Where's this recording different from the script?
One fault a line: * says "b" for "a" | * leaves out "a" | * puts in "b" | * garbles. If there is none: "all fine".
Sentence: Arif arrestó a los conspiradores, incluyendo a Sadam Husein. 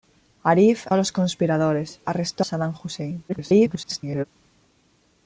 * leaves out "arrestó"
* says "arrestó" for "incluyendo"
* garbles